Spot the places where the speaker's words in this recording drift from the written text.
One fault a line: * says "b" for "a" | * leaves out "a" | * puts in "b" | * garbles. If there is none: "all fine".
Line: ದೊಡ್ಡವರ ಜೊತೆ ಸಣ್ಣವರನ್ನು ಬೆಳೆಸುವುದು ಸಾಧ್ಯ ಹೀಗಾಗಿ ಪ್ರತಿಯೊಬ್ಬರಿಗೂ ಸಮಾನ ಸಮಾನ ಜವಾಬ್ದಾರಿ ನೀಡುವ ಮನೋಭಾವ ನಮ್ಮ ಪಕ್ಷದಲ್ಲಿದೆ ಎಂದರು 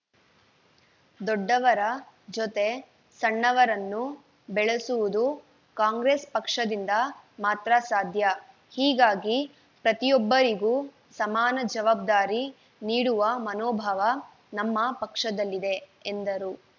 * puts in "ಕಾಂಗ್ರೆಸ್ ಪಕ್ಷದಿಂದ ಮಾತ್ರ"
* leaves out "ಸಮಾನ"